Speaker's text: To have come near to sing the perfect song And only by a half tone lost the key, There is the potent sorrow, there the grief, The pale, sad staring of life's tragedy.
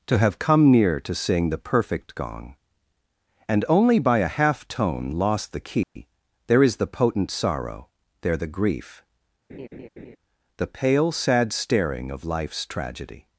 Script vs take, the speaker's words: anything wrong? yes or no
yes